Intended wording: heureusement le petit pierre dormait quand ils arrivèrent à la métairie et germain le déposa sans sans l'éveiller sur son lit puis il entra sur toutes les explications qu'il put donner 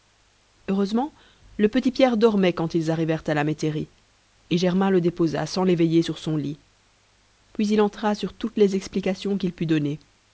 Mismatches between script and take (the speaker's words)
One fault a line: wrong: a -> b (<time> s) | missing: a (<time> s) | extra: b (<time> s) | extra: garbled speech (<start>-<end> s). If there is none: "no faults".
missing: sans (5.6 s)